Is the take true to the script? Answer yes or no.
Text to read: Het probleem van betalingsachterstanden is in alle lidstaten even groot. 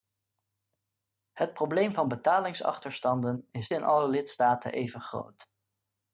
yes